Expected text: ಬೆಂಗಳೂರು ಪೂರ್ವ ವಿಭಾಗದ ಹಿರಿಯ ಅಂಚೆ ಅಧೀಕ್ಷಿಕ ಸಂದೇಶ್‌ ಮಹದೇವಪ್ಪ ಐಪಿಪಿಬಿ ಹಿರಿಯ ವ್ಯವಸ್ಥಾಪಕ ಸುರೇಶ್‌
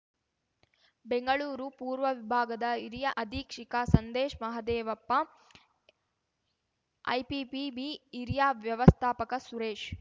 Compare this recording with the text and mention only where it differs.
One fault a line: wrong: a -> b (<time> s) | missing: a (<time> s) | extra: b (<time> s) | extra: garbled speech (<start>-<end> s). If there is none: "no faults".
missing: ಅಂಚೆ (3.1 s)